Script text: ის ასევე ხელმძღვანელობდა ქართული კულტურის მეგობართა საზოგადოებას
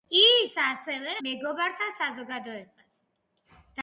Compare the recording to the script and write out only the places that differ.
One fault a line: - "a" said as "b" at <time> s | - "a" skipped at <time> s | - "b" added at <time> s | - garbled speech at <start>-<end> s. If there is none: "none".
- "ხელმძღვანელობდა ქართული კულტურის" skipped at 1.1 s